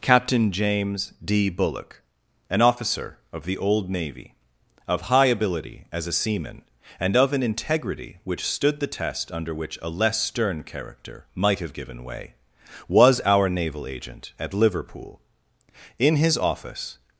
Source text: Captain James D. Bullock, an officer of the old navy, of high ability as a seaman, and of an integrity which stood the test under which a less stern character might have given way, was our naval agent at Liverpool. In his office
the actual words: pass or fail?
pass